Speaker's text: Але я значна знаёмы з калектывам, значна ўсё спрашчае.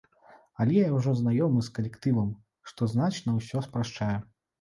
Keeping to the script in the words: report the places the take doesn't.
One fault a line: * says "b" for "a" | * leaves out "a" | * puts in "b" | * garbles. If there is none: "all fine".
* says "ўжо" for "значна"
* puts in "што"